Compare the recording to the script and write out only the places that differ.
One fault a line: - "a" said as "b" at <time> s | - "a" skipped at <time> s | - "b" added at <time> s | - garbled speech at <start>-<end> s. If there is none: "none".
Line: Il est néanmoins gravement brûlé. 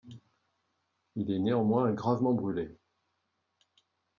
none